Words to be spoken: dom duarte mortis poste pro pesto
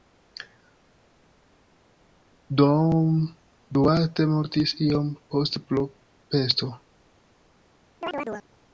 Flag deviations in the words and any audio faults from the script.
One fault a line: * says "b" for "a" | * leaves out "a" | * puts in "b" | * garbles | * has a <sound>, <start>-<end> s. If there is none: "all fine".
* puts in "iom"
* has a chirp, 8.0-8.5 s